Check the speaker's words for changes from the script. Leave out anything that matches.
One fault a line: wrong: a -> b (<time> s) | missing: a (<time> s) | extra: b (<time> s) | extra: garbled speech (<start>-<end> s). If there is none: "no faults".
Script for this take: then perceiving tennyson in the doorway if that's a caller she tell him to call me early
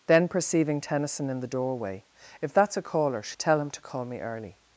no faults